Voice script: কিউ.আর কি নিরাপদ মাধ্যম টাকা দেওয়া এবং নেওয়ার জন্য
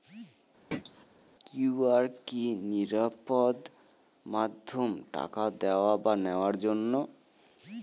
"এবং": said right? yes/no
no